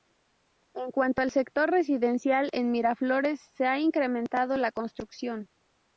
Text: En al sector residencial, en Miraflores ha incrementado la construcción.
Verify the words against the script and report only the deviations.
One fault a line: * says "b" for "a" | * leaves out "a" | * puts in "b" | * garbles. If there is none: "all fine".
* puts in "cuanto"
* puts in "se"